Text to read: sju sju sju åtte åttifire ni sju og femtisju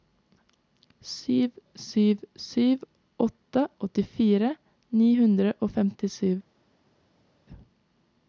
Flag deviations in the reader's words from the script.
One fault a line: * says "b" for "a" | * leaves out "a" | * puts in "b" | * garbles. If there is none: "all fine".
* says "hundre" for "sju"